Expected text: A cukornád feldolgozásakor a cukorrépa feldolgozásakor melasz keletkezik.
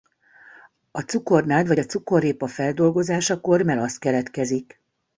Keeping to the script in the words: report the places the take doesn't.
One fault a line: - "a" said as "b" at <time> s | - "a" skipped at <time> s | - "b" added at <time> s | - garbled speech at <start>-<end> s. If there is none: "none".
- "feldolgozásakor" said as "vagy" at 1.7 s